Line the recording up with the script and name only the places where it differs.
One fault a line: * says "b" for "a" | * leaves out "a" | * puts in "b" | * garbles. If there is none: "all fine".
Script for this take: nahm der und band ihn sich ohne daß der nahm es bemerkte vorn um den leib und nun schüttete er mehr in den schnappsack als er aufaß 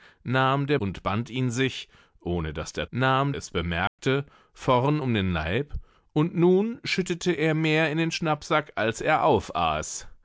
all fine